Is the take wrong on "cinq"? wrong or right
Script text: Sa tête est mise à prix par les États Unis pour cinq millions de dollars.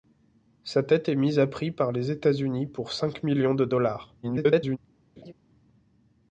right